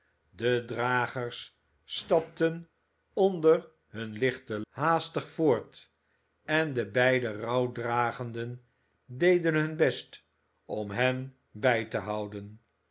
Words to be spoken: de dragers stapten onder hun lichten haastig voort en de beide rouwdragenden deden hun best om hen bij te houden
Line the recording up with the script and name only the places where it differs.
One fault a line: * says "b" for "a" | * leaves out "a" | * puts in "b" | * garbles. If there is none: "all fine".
all fine